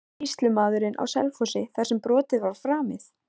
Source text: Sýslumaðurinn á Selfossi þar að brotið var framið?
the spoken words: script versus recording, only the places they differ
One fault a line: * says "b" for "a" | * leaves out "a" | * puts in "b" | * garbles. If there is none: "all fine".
* says "sem" for "að"